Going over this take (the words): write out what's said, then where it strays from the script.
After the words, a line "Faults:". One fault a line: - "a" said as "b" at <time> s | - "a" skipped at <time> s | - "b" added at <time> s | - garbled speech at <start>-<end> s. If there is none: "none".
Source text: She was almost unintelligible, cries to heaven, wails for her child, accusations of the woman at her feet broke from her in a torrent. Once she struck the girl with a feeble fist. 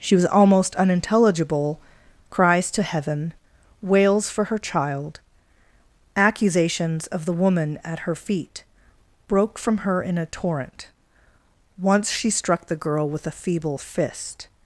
She was almost unintelligible, cries to heaven, wails for her child, accusations of the woman at her feet broke from her in a torrent. Once she struck the girl with a feeble fist.
Faults:
none